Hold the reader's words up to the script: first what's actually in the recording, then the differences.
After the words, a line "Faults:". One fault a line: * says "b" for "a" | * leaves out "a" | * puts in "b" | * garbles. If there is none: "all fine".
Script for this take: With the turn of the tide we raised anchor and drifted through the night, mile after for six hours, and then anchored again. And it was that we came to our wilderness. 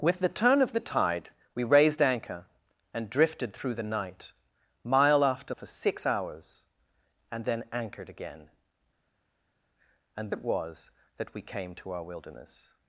With the turn of the tide we raised anchor and drifted through the night, mile after for six hours, and then anchored again. And it was that we came to our wilderness.
Faults:
all fine